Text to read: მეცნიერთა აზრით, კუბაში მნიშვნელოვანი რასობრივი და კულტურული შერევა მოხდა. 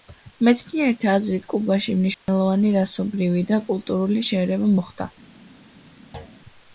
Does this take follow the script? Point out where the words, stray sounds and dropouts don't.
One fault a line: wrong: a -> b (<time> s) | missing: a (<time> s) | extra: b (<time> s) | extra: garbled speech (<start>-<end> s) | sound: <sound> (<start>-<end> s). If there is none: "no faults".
sound: dropout (2.1-2.3 s)
sound: thud (6.1-6.4 s)